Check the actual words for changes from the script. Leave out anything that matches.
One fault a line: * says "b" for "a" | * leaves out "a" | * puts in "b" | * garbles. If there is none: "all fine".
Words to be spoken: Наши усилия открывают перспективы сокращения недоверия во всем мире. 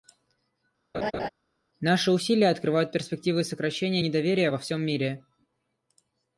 all fine